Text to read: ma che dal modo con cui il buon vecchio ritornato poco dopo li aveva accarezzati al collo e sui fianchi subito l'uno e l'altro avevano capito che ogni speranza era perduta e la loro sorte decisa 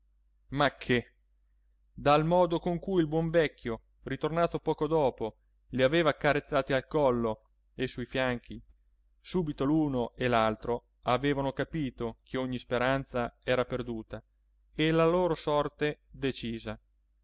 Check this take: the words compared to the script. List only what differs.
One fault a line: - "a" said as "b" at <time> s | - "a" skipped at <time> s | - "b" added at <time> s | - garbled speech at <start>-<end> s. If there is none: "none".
none